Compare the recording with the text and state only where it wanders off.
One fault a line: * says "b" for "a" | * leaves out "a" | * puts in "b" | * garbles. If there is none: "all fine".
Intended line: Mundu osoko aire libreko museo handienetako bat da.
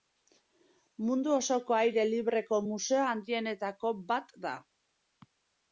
all fine